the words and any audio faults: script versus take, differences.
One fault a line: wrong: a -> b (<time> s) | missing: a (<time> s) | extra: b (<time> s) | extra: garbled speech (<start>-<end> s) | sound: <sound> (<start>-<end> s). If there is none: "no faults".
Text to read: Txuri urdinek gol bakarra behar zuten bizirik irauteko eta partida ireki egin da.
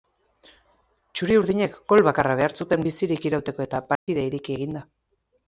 sound: dropout (3.9-4.1 s)